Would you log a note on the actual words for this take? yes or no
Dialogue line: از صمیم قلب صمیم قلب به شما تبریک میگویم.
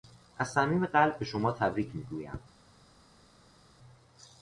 yes